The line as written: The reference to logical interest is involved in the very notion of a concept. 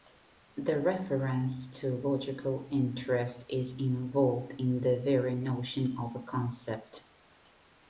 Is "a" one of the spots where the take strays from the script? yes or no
no